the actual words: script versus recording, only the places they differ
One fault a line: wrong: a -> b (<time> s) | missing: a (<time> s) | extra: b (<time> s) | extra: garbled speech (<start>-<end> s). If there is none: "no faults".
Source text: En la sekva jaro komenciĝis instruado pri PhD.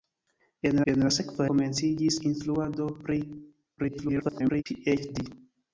extra: en (0.9 s)
missing: jaro (1.5 s)
extra: garbled speech (3.8-4.6 s)